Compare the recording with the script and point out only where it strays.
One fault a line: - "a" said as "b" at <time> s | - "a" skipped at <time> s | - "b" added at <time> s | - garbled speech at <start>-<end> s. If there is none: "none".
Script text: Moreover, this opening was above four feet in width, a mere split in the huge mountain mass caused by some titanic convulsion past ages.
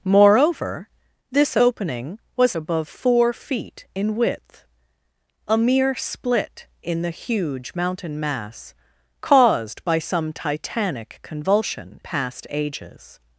none